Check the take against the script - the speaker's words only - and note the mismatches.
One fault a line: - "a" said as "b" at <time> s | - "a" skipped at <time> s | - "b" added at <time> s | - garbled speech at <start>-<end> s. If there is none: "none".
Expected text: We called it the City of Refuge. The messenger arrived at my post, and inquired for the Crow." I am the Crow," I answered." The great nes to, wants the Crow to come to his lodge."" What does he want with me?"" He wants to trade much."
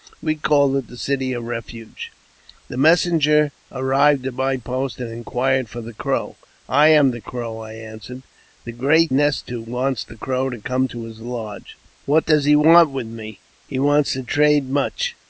none